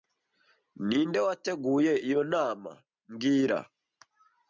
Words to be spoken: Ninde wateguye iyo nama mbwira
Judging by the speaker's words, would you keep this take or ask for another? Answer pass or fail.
pass